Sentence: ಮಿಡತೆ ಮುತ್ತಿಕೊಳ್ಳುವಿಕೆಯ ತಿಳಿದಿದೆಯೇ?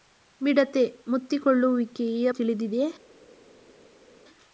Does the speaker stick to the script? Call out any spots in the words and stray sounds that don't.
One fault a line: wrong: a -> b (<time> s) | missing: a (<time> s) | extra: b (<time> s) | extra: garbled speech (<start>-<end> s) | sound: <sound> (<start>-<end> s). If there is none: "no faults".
no faults